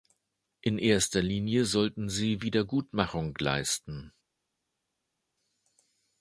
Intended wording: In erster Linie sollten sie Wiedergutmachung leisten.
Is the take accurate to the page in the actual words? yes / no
yes